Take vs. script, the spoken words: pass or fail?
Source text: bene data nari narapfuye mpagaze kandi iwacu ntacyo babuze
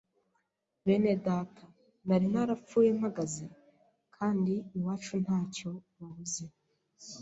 pass